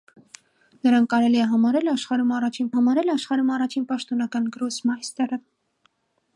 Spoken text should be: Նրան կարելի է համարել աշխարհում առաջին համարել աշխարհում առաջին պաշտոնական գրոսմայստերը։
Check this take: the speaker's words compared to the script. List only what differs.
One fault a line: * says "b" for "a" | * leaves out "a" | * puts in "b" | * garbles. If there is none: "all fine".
all fine